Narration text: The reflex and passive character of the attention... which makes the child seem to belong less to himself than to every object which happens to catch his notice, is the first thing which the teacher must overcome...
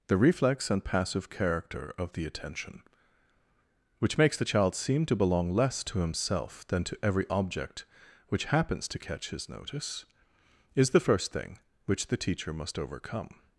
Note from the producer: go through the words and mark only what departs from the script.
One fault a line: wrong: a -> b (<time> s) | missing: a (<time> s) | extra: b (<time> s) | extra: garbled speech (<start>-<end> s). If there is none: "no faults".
no faults